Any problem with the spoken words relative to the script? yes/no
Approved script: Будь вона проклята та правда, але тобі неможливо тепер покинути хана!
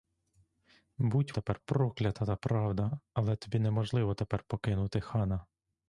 yes